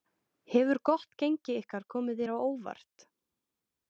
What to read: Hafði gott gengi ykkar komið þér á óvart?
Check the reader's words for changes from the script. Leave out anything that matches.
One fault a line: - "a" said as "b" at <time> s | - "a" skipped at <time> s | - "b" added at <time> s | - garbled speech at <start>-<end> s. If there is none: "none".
- "Hafði" said as "Hefur" at 0.5 s